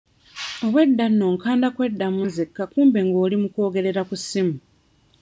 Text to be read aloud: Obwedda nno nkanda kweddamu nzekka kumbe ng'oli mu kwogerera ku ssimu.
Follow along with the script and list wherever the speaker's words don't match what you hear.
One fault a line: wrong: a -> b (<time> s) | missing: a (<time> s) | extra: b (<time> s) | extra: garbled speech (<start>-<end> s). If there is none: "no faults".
no faults